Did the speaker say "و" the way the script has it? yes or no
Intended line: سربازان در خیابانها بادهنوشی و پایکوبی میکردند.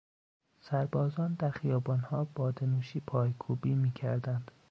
no